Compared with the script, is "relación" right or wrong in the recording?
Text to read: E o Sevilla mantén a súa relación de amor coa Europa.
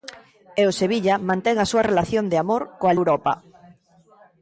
right